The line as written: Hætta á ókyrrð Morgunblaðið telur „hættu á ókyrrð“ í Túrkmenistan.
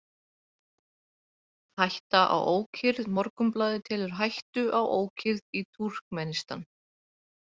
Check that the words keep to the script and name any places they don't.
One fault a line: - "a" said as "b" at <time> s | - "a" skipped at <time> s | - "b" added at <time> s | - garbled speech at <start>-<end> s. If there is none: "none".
none